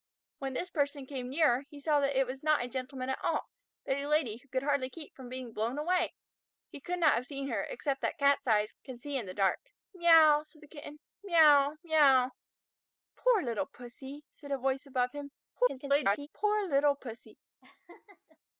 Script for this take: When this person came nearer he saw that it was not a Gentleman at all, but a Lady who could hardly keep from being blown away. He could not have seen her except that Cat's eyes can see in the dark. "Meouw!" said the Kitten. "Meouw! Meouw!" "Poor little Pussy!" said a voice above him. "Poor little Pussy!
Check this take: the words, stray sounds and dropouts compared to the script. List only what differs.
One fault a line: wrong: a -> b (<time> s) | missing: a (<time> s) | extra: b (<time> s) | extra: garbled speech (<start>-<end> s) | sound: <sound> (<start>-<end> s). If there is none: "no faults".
extra: garbled speech (15.6-16.3 s)
sound: laugh (17.6-18.4 s)